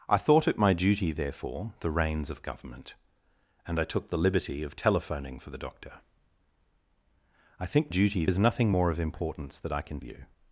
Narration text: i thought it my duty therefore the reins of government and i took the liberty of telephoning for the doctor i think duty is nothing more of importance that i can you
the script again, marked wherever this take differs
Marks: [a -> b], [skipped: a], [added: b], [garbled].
i thought it my duty therefore the reins of government and i took the liberty of telephoning for the doctor i think duty is nothing more of importance that i can you